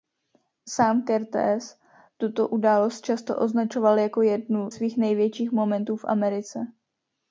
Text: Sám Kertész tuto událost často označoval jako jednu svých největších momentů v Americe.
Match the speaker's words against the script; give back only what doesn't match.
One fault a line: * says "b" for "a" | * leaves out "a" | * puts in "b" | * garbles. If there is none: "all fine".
all fine